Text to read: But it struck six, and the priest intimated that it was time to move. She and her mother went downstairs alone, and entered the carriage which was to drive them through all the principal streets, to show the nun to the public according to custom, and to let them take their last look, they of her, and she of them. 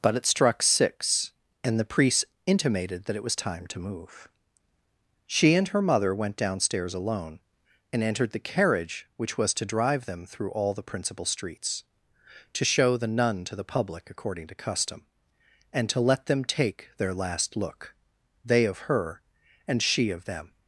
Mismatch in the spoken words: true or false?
false